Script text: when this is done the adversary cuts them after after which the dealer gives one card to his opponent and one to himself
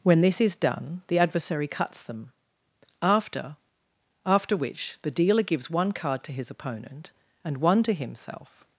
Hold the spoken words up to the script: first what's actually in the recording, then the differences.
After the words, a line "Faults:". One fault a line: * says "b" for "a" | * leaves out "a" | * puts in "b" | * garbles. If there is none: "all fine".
when this is done the adversary cuts them after after which the dealer gives one card to his opponent and one to himself
Faults:
all fine